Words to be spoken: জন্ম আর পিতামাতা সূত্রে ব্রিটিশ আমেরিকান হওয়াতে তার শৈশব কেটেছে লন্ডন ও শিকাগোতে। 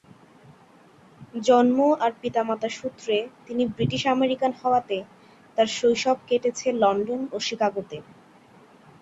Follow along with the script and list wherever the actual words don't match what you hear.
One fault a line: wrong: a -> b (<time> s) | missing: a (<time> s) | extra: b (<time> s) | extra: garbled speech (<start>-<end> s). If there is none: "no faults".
extra: তিনি (3.5 s)